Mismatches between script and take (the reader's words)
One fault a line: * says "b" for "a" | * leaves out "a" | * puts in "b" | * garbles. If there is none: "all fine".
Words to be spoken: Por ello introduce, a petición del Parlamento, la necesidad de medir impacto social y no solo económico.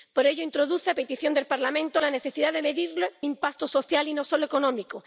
all fine